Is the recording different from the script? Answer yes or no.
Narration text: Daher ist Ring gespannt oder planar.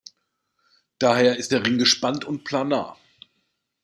yes